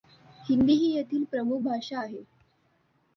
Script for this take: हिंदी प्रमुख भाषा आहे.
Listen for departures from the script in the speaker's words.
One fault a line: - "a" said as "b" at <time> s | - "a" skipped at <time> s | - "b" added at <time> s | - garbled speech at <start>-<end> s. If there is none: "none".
- "ही येथील" added at 0.7 s